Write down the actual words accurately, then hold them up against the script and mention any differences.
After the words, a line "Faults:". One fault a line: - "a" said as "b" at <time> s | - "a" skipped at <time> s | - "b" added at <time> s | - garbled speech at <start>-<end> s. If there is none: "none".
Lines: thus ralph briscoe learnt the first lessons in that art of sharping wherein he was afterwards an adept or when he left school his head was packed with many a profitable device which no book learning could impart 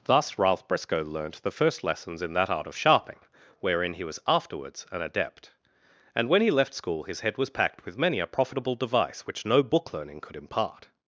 thus ralph briscoe learnt the first lessons in that art of sharping wherein he was afterwards an adept and when he left school his head was packed with many a profitable device which no book learning could impart
Faults:
- "or" said as "and" at 6.1 s